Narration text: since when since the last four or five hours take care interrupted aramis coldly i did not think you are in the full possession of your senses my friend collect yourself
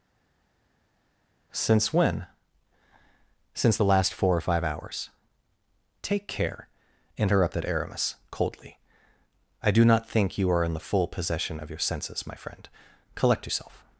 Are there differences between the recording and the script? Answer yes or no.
yes